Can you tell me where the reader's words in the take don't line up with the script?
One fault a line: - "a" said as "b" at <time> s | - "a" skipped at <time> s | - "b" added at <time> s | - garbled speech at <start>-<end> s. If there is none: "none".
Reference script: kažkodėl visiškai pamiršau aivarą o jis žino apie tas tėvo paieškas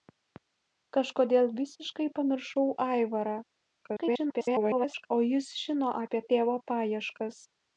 - garbled speech at 3.8-5.1 s
- "tas" skipped at 6.2 s